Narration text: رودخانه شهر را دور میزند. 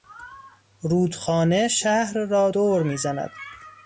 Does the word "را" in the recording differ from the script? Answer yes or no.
no